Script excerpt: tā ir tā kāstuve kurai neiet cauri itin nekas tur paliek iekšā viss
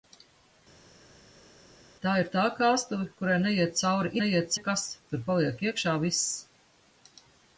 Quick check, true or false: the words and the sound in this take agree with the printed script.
false